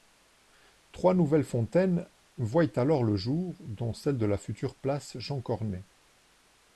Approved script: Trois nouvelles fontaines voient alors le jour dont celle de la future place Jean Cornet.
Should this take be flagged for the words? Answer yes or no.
no